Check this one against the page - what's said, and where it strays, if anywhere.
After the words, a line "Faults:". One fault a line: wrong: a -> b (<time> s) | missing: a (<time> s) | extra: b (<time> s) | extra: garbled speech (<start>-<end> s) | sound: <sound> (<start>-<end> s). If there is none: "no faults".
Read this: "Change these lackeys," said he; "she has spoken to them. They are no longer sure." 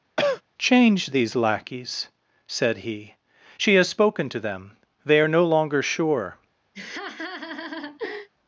"Change these lackeys," said he; "she has spoken to them. They are no longer sure."
Faults:
sound: cough (0.2-0.4 s)
sound: laugh (6.7-8.3 s)